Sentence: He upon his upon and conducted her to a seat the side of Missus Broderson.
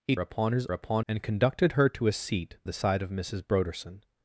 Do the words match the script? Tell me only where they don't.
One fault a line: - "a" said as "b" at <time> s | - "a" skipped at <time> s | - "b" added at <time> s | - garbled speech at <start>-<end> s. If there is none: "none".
none